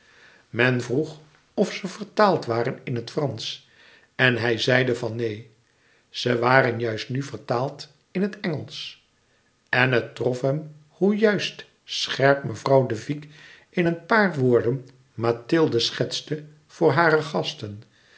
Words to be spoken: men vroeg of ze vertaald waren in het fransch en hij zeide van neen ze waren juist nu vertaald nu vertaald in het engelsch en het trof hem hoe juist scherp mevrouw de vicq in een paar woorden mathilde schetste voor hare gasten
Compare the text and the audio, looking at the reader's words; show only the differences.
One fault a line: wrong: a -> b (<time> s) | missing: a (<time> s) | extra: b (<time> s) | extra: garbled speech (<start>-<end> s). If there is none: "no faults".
missing: nu vertaald (7.9 s)